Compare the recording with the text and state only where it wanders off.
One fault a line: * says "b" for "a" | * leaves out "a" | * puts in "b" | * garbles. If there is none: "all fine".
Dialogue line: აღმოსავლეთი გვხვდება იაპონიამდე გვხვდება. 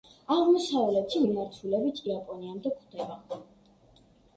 * says "მიმართულებით" for "გვხვდება"